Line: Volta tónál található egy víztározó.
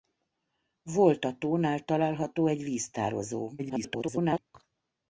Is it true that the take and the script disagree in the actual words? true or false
true